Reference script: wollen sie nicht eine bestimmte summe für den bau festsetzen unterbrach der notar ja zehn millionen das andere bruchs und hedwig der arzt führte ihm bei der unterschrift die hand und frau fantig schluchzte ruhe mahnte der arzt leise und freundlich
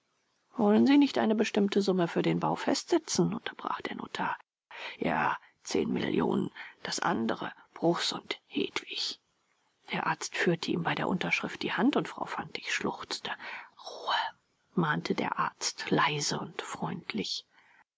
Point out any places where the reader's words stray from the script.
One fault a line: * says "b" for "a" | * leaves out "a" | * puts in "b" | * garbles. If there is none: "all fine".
all fine